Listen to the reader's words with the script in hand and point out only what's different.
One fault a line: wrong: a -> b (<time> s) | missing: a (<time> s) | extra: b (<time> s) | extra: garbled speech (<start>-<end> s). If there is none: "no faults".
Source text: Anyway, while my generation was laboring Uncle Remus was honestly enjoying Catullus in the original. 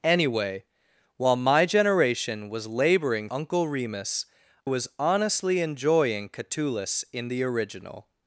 no faults